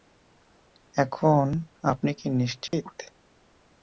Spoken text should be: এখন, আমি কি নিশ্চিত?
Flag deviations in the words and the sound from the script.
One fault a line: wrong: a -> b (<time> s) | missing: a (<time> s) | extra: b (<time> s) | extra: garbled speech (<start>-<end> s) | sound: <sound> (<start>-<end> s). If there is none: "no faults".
wrong: আমি -> আপনি (1.8 s)
sound: dropout (2.7-2.7 s)